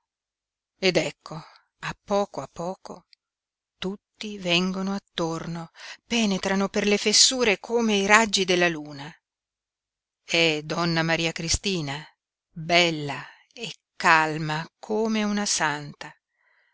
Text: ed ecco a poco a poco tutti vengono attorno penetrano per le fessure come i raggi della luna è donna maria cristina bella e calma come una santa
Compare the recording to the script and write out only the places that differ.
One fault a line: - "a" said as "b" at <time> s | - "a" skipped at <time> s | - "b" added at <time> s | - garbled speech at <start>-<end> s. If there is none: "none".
none